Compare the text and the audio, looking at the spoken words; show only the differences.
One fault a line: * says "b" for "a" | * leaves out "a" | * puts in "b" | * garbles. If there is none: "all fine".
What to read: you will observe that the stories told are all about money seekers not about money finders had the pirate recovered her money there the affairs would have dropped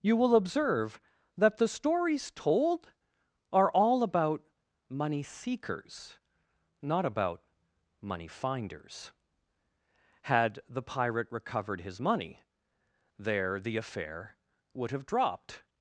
* says "his" for "her"
* says "affair" for "affairs"